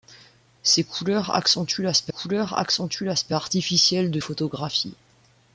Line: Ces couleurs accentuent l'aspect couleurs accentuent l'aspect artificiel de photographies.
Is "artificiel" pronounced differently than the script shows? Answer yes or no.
no